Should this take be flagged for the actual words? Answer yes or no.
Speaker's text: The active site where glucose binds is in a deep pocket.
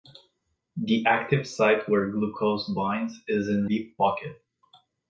yes